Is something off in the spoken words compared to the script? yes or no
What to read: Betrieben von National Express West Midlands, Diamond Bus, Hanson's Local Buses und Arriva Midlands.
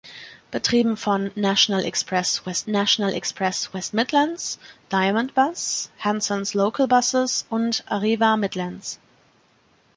yes